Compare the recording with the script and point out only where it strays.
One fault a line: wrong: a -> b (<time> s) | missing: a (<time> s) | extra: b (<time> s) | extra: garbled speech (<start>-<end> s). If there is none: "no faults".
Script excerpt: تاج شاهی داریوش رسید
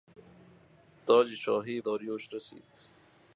no faults